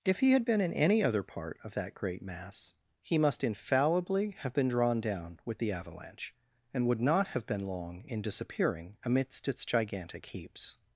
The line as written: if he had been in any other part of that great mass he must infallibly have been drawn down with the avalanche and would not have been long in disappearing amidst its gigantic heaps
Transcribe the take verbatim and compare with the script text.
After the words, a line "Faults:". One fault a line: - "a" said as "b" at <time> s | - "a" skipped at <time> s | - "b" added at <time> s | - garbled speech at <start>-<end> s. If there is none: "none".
if he had been in any other part of that great mass he must infallibly have been drawn down with the avalanche and would not have been long in disappearing amidst its gigantic heaps
Faults:
none